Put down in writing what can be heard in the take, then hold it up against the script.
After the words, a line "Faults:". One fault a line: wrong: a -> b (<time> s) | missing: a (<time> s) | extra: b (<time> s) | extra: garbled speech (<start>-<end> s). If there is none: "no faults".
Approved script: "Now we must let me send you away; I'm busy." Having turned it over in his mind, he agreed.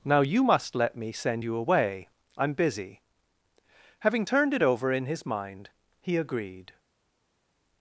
"Now you must let me send you away; I'm busy." Having turned it over in his mind, he agreed.
Faults:
wrong: we -> you (0.2 s)